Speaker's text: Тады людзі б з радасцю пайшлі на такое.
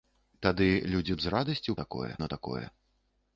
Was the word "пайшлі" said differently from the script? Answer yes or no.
yes